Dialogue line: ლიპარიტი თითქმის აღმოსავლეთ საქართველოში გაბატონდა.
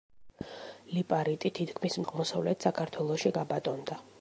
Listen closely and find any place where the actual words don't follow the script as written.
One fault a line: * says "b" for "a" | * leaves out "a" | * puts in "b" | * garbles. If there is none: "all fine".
all fine